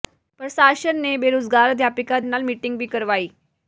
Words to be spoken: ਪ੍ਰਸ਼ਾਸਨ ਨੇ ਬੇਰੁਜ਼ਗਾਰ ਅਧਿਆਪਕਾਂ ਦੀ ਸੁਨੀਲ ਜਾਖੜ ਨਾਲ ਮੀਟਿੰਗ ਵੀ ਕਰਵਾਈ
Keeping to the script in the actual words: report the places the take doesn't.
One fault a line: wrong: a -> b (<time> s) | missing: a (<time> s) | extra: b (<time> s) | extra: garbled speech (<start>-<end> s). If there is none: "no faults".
missing: ਦੀ ਸੁਨੀਲ ਜਾਖੜ (2.2 s)